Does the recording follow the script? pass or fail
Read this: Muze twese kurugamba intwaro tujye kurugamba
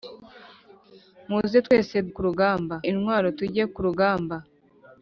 pass